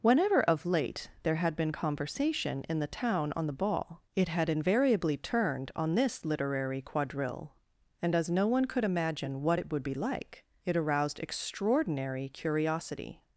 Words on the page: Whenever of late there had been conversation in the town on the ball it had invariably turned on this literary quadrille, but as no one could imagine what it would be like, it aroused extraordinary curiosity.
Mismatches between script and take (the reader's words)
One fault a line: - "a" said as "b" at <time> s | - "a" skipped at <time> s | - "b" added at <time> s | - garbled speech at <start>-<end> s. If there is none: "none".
- "but" said as "and" at 8.0 s